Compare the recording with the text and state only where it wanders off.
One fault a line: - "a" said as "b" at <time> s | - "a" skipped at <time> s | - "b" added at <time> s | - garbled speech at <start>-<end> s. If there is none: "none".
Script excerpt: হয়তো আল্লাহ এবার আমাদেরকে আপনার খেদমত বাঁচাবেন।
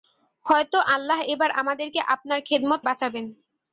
none